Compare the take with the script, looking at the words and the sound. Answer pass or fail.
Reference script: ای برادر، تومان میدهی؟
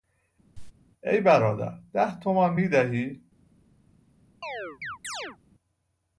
fail